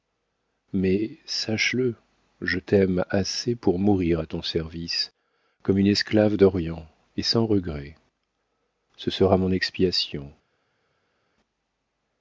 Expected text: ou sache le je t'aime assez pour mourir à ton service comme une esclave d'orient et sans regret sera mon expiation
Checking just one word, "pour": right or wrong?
right